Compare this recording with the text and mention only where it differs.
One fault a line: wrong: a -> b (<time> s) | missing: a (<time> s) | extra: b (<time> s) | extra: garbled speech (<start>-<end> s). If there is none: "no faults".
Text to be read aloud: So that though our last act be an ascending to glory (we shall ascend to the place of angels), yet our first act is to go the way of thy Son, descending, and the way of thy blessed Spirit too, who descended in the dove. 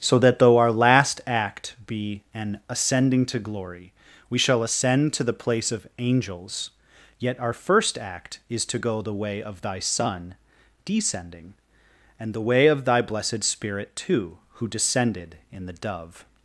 no faults